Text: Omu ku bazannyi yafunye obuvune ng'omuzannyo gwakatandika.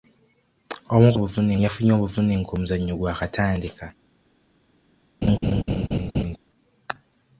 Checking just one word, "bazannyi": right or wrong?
wrong